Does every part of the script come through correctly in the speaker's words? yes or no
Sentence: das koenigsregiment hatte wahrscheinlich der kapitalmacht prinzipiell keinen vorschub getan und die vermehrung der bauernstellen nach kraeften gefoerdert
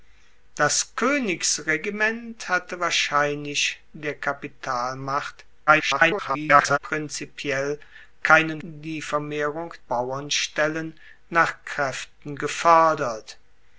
no